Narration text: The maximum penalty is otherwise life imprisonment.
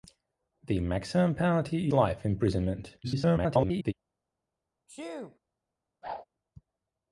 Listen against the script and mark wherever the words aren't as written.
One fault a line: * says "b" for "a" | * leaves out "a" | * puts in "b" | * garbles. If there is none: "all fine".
* leaves out "is otherwise"
* garbles